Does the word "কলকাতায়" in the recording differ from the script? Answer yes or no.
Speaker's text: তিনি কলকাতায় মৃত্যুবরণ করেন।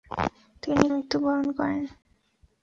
yes